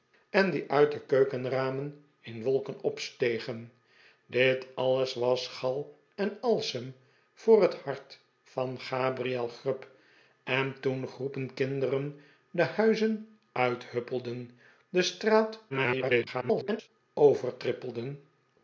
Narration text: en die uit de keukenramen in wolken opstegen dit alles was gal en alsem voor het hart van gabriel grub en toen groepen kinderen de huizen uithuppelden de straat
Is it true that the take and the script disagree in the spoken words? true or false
true